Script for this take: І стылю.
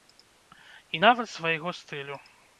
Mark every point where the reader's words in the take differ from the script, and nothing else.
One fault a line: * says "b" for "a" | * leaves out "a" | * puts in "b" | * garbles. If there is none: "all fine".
* puts in "нават свайго"